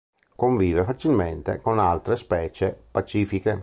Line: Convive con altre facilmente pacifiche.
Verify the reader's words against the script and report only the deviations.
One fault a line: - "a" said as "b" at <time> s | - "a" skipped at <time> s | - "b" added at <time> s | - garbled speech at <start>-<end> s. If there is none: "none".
- "facilmente" added at 0.8 s
- "facilmente" said as "specie" at 2.2 s